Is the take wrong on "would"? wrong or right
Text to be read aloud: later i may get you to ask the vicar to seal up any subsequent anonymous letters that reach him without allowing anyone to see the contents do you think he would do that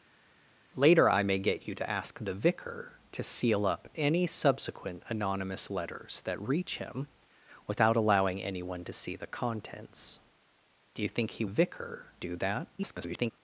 wrong